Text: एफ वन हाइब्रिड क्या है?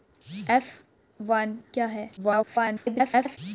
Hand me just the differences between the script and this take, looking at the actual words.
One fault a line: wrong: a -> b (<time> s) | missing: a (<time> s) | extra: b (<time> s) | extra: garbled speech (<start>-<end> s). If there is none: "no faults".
missing: हाइब्रिड (1.6 s)
extra: garbled speech (2.2-3.4 s)